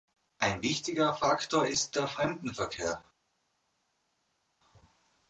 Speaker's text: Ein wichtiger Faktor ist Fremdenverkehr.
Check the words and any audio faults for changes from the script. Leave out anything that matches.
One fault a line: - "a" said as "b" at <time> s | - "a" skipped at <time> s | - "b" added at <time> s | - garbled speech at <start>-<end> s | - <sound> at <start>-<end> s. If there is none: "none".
- "der" added at 1.9 s